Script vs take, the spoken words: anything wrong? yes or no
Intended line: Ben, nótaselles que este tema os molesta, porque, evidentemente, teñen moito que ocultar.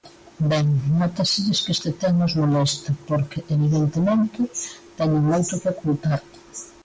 no